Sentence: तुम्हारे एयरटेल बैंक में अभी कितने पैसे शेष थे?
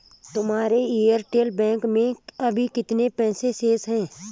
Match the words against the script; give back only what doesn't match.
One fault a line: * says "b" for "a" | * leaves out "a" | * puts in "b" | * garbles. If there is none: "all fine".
* says "हैं" for "थे"